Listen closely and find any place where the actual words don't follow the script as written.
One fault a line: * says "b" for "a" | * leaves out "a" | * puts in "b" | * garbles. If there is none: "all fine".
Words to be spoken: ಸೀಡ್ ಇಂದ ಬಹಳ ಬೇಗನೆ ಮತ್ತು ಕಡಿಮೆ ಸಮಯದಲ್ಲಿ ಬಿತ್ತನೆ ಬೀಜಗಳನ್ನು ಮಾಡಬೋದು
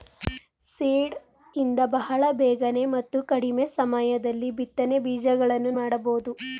all fine